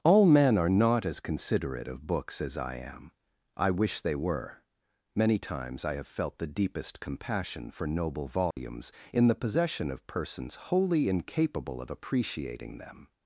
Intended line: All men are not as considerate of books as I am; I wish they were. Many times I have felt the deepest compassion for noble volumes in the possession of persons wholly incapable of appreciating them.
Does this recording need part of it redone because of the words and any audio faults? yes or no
yes